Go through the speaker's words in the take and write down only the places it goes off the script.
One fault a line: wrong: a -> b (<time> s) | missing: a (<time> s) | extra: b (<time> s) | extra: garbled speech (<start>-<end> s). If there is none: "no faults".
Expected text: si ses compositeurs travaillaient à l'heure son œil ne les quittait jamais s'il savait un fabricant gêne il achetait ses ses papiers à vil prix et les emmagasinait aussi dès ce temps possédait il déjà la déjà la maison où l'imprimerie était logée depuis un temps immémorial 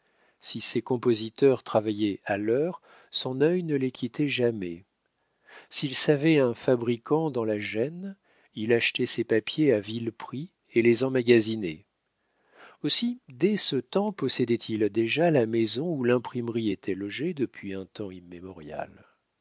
extra: dans la (7.3 s)
missing: ses (9.3 s)
missing: déjà la (15.5 s)